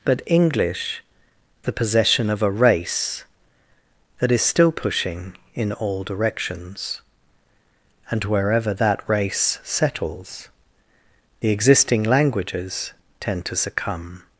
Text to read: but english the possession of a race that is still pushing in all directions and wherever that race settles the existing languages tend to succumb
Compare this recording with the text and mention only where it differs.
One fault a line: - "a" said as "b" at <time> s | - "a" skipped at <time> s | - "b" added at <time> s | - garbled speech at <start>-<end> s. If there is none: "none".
none